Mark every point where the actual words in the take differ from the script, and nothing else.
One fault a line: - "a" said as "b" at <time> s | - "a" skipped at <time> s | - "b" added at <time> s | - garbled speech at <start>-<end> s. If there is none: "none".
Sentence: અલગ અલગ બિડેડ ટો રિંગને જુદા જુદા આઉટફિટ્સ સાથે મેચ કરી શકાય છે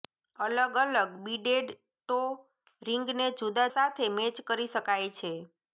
- "જુદા આઉટફિટ્સ" skipped at 3.7 s